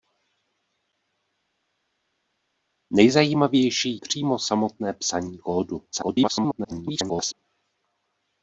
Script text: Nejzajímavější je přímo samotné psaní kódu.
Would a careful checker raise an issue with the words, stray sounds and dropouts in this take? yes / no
yes